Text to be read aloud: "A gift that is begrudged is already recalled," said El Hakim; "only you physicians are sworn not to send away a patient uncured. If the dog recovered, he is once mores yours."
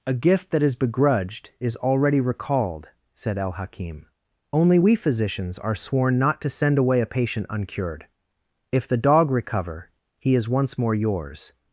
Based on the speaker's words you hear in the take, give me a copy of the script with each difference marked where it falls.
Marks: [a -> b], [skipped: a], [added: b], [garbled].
"A gift that is begrudged is already recalled," said El Hakim; "only [you -> we] physicians are sworn not to send away a patient uncured. If the dog [recovered, -> recover] he is once [mores -> more] yours."